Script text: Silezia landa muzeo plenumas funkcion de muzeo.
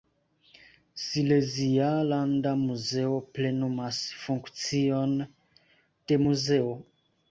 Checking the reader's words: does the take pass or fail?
pass